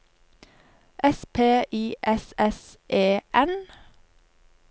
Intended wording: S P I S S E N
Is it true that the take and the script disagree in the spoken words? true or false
false